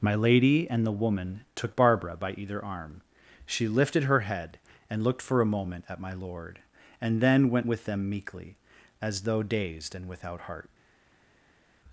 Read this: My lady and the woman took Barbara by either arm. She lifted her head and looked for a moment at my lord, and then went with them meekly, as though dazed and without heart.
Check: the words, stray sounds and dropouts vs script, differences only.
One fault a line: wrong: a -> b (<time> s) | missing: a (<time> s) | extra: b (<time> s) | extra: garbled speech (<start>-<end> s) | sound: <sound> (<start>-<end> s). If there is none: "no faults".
no faults